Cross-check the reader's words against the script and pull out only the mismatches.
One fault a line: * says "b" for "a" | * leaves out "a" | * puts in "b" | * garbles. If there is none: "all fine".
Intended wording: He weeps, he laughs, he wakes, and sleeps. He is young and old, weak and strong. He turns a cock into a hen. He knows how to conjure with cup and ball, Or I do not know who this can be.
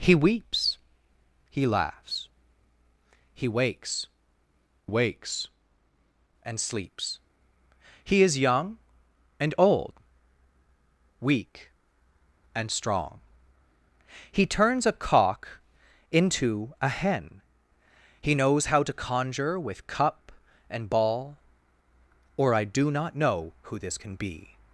* puts in "wakes"